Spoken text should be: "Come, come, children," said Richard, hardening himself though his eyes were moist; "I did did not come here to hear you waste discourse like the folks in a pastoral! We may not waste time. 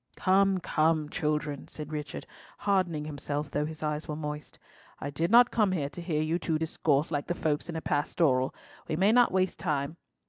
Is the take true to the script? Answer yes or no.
no